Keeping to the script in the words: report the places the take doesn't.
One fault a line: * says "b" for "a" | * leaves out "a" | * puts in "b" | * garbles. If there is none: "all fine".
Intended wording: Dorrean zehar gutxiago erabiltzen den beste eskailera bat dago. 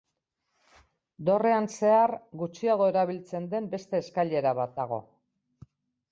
all fine